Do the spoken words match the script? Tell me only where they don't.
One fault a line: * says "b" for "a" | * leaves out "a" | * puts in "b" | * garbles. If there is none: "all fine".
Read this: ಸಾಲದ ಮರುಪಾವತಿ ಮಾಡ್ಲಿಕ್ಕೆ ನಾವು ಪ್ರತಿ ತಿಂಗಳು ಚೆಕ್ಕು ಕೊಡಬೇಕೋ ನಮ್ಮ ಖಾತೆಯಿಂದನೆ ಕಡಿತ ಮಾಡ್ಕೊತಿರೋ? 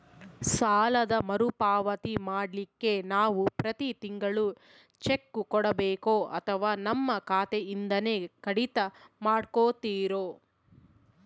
* puts in "ಅಥವಾ"